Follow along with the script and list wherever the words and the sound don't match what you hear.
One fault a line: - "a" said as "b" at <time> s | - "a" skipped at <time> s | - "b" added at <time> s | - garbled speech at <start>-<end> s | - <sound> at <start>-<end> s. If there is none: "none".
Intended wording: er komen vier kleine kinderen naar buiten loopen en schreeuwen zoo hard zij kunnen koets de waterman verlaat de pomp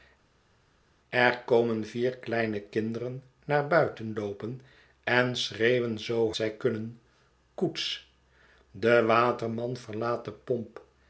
- "hard" skipped at 6.3 s